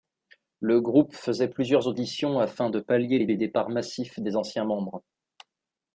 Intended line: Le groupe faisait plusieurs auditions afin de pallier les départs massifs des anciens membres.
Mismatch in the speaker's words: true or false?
true